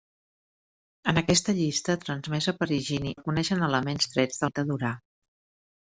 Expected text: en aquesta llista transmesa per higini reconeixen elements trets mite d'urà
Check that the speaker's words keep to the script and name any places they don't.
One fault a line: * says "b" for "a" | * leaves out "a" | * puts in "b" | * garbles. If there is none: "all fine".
all fine